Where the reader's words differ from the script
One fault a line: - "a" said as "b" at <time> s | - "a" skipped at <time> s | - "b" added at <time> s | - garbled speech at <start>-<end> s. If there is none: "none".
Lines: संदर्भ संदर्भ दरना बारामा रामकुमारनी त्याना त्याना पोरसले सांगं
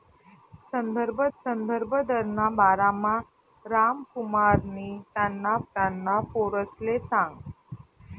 none